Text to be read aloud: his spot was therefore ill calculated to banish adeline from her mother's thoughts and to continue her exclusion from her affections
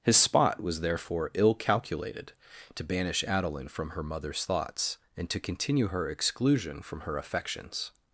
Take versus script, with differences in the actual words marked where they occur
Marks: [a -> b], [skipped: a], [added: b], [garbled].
his spot was therefore ill calculated to banish adeline from her mother's thoughts and to continue her exclusion from her affections